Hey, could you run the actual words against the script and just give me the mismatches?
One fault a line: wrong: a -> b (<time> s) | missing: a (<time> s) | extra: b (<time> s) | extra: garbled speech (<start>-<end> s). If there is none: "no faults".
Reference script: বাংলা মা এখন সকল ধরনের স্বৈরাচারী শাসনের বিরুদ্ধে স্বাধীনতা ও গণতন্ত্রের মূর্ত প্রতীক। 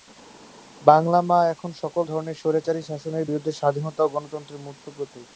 no faults